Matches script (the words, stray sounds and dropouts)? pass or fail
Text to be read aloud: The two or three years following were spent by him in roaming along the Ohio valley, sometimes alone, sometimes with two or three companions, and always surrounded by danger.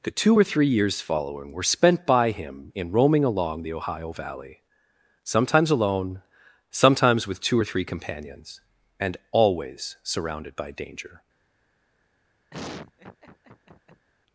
fail